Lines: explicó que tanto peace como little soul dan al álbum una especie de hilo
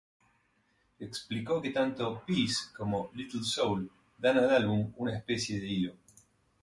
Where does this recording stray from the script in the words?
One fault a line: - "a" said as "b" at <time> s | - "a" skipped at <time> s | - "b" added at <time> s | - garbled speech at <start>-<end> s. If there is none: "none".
none